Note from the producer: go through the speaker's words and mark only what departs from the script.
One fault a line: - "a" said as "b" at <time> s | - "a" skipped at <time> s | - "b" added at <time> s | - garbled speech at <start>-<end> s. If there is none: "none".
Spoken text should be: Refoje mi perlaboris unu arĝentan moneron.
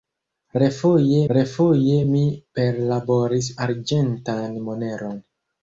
- "refoje" added at 1.4 s
- "unu" skipped at 3.5 s